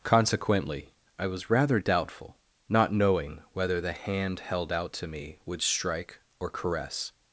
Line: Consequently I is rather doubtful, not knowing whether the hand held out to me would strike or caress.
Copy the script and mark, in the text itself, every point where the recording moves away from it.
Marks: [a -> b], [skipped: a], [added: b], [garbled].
Consequently I [is -> was] rather doubtful, not knowing whether the hand held out to me would strike or caress.